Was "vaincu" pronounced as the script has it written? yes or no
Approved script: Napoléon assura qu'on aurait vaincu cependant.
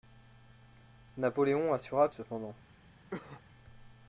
no